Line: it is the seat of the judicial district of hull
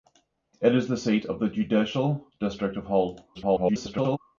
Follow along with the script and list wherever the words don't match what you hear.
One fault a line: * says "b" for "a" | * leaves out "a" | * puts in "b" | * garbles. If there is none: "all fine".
* garbles